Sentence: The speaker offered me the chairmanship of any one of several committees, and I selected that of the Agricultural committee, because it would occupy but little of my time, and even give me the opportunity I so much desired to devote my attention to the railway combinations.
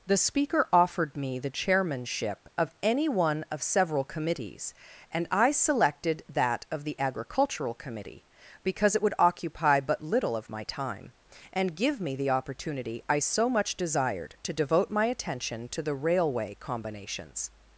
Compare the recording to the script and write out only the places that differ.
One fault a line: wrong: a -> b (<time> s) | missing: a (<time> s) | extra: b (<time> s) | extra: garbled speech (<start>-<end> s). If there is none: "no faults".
missing: even (11.8 s)